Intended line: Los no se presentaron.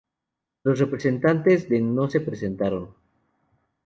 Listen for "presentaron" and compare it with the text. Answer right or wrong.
right